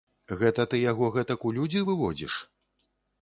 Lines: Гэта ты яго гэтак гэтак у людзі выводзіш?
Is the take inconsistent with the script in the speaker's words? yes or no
yes